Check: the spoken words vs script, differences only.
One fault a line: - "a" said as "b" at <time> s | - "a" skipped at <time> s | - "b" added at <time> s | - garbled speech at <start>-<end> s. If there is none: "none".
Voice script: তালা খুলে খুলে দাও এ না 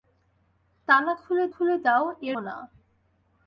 none